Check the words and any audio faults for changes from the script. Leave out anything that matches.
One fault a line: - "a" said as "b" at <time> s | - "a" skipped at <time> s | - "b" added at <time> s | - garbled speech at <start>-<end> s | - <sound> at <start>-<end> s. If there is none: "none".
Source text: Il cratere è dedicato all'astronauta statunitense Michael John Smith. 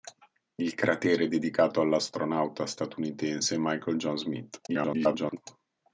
- garbled speech at 4.7-5.4 s